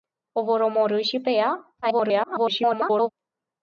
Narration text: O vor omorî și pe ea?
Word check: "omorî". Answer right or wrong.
right